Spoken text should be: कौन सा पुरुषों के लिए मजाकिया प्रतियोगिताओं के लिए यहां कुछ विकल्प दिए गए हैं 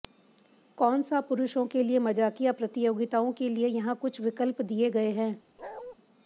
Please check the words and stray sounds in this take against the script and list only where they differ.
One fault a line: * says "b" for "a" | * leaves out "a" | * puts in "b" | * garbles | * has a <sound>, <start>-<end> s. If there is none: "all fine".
* has a bark, 5.6-6.0 s